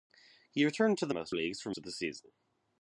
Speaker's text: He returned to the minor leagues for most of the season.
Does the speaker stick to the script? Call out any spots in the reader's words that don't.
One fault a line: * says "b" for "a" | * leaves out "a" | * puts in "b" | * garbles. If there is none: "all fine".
* says "most" for "minor"
* leaves out "most"